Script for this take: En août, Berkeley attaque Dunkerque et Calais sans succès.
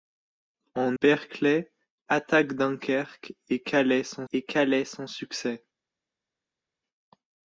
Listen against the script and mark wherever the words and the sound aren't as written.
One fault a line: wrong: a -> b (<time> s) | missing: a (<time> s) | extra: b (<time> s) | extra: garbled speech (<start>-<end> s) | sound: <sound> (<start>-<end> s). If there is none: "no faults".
missing: août (1.0 s)
extra: et Calais sans (4.3 s)